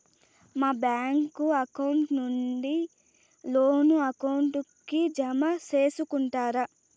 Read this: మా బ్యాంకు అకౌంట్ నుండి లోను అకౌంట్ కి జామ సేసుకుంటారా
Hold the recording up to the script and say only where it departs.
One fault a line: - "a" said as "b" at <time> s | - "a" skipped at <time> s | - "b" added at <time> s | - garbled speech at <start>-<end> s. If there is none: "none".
none